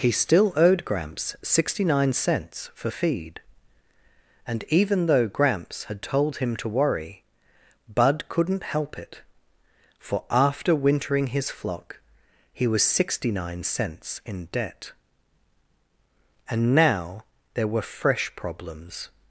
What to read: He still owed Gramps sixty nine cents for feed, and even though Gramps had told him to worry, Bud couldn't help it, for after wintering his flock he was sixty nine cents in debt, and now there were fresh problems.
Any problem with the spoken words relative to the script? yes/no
no